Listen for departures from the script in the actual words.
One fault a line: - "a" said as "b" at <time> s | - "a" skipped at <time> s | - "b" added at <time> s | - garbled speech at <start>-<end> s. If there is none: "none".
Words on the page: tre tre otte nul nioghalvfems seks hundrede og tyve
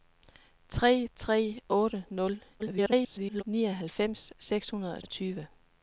- garbled speech at 2.6-3.4 s
- "og" added at 5.0 s